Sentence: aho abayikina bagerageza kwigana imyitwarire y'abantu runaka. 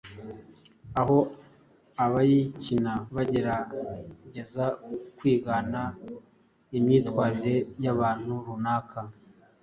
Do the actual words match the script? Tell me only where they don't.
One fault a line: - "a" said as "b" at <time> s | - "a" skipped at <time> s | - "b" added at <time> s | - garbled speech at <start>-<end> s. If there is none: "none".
none